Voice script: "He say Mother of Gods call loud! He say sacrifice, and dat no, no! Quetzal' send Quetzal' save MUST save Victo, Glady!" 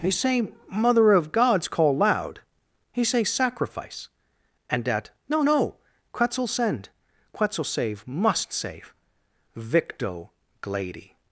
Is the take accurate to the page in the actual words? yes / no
yes